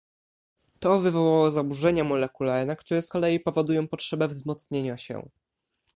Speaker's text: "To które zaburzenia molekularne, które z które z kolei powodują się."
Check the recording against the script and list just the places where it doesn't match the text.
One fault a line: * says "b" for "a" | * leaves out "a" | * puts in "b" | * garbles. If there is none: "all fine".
* says "wywołało" for "które"
* says "kolei powodują potrzebę wzmocnienia" for "które z kolei powodują"